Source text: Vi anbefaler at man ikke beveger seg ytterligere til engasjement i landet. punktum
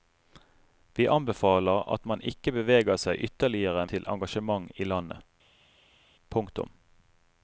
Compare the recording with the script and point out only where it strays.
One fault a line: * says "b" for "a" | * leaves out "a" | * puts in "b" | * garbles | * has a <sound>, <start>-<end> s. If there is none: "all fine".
all fine